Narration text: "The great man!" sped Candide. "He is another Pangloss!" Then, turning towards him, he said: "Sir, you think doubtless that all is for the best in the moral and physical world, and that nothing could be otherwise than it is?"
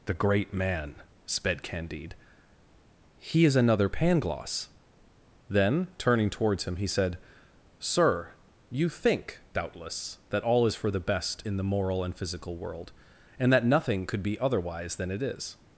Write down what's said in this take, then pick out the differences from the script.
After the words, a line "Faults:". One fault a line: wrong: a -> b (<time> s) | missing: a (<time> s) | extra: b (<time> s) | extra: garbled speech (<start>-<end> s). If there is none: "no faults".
"The great man!" sped Candide. "He is another Pangloss!" Then, turning towards him, he said: "Sir, you think doubtless that all is for the best in the moral and physical world, and that nothing could be otherwise than it is?"
Faults:
no faults